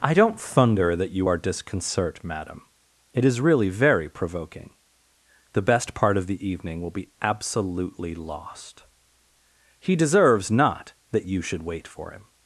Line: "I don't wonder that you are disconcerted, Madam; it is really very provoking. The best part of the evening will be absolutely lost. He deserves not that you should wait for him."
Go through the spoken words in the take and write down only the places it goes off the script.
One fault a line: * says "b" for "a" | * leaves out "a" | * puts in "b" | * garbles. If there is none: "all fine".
* says "thunder" for "wonder"
* says "disconcert" for "disconcerted"